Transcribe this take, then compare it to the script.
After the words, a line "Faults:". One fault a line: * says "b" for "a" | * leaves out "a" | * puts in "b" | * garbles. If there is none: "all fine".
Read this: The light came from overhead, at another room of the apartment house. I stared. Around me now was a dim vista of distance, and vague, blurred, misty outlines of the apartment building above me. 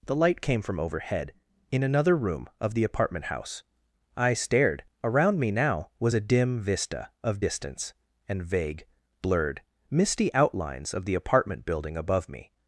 The light came from overhead, in another room of the apartment house. I stared. Around me now was a dim vista of distance, and vague, blurred, misty outlines of the apartment building above me.
Faults:
* says "in" for "at"